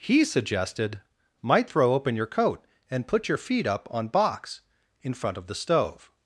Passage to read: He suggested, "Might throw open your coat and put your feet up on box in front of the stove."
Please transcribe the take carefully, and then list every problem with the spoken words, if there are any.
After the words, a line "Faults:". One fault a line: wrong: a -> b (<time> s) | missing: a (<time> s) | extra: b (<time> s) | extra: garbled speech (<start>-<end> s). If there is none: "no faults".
He suggested, "Might throw open your coat and put your feet up on box in front of the stove."
Faults:
no faults